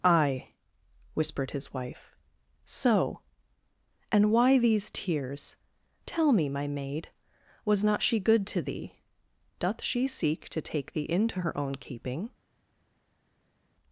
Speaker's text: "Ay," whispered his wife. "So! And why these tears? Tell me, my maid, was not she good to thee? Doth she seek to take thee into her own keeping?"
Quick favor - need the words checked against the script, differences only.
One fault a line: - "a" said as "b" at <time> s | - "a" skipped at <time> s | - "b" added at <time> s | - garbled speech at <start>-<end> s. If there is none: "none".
none